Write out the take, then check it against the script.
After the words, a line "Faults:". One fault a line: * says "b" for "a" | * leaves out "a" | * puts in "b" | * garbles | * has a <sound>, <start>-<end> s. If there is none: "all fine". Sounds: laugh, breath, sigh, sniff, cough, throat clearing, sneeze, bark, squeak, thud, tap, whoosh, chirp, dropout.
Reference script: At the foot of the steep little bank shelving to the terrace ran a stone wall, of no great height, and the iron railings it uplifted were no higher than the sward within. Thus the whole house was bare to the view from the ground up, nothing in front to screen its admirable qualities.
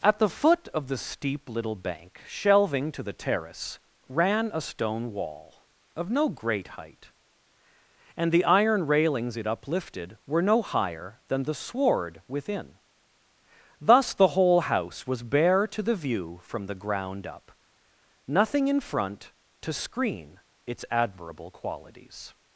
At the foot of the steep little bank shelving to the terrace ran a stone wall, of no great height, and the iron railings it uplifted were no higher than the sward within. Thus the whole house was bare to the view from the ground up, nothing in front to screen its admirable qualities.
Faults:
all fine